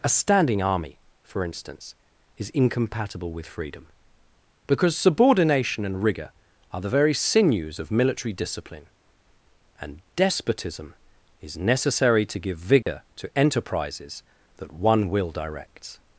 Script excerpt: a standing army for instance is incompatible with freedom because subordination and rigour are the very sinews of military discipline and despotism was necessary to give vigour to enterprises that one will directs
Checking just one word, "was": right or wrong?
wrong